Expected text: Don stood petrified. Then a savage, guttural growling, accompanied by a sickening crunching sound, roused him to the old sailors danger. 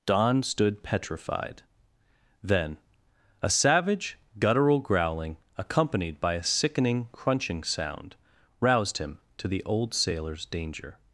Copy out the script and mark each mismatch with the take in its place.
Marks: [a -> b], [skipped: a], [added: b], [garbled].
Don stood petrified. Then a savage, guttural growling, accompanied by a sickening crunching sound, roused him to the old sailors danger.